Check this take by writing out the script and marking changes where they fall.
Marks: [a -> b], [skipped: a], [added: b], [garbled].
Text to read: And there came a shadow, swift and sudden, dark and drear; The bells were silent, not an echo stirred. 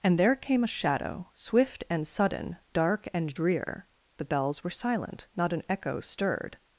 And there came a shadow, swift and sudden, dark and drear; The bells were silent, not an echo stirred.